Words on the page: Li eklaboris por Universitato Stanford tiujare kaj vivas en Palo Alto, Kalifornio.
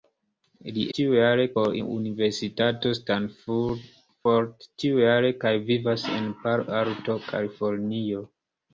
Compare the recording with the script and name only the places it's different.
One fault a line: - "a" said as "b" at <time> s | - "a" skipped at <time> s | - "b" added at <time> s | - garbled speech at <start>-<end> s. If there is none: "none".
- "eklaboris" said as "tiujare" at 1.0 s